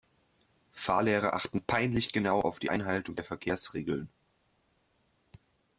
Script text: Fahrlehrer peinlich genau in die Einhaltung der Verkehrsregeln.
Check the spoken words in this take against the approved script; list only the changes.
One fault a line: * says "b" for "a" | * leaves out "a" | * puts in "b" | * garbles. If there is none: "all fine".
* puts in "achten"
* says "auf" for "in"